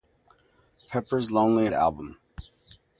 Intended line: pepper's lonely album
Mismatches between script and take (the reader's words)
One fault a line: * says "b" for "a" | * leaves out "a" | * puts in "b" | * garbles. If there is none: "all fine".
all fine